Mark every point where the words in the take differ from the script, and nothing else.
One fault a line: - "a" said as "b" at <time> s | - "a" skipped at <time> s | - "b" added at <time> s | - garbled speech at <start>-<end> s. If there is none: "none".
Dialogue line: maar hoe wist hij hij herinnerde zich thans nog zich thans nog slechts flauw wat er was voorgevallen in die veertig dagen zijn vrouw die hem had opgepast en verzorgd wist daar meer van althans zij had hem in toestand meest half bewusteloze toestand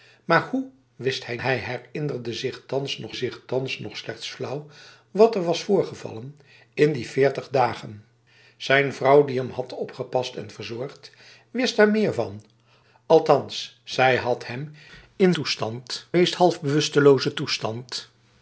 none